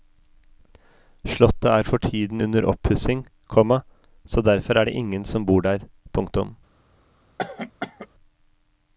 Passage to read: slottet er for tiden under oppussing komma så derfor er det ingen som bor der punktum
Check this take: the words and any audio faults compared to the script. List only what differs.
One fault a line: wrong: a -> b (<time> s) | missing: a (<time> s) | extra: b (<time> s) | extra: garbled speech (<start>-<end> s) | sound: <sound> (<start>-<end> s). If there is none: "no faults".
sound: cough (7.4-8.1 s)